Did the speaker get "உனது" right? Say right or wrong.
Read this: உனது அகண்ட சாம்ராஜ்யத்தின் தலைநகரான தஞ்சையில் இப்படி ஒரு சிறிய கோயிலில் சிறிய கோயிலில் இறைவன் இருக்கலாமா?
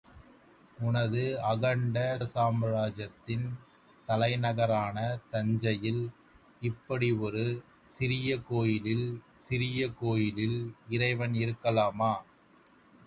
right